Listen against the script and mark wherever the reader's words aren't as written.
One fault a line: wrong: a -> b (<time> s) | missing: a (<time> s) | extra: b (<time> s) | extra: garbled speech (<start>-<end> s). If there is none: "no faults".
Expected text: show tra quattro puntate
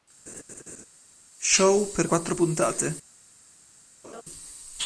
wrong: tra -> per (1.9 s)